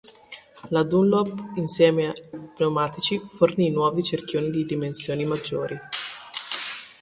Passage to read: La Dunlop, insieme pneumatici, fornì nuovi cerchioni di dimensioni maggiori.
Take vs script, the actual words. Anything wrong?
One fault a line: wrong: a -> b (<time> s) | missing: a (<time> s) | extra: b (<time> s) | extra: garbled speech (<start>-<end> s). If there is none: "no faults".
no faults